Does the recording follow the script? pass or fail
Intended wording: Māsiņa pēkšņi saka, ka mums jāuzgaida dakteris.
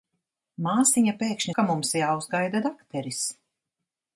fail